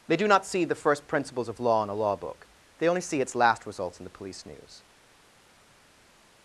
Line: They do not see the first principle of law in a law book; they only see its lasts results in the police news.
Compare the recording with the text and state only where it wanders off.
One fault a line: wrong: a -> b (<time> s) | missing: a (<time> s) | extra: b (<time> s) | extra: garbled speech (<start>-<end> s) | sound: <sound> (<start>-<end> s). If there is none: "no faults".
wrong: principle -> principles (1.1 s)
wrong: lasts -> last (3.4 s)